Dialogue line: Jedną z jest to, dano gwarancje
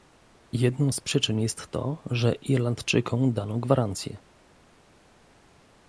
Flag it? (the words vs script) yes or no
yes